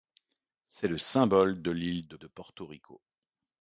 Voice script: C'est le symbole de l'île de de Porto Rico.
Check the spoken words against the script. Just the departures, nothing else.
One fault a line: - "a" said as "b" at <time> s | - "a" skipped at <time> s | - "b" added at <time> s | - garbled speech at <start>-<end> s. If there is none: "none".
none